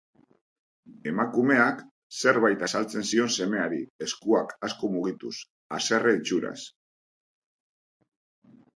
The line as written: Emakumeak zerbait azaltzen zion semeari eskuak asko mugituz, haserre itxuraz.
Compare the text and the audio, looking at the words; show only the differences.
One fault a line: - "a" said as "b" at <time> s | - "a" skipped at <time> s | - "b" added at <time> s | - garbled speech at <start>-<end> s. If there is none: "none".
none